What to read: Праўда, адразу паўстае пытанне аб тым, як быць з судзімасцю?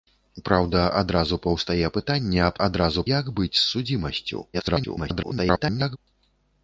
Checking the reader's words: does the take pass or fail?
fail